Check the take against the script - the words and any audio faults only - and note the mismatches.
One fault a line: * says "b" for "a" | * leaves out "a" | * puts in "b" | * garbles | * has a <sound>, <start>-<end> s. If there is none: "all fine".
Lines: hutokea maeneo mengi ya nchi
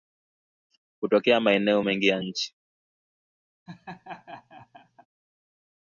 * has a laugh, 3.7-5.1 s